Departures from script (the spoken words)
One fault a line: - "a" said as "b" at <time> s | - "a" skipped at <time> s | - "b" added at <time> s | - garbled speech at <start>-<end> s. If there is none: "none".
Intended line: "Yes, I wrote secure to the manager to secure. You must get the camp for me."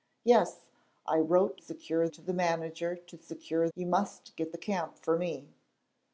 none